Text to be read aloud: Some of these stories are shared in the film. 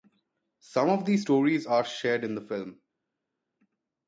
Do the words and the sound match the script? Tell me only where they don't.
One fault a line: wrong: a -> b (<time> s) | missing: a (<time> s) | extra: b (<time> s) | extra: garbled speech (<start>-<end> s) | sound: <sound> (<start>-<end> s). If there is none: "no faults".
no faults